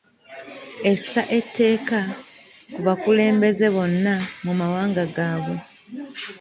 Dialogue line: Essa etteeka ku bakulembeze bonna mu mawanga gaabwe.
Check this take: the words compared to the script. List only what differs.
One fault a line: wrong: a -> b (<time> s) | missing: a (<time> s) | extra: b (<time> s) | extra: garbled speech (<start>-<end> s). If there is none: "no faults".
no faults